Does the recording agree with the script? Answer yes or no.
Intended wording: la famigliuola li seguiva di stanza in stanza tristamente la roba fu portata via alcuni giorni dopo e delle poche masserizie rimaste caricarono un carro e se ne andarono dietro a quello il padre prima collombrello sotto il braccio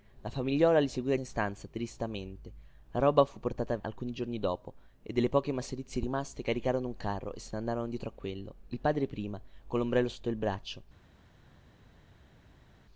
no